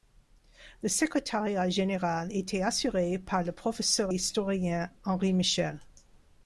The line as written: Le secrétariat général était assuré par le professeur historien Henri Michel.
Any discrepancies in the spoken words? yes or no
no